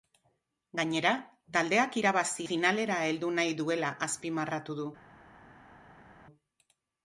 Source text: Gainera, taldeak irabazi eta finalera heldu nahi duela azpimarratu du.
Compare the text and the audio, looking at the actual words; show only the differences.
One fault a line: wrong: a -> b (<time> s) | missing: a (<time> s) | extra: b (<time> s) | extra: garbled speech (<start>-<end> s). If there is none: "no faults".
missing: eta (2.4 s)